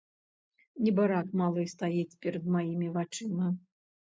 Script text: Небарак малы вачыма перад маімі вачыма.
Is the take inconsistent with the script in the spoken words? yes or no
yes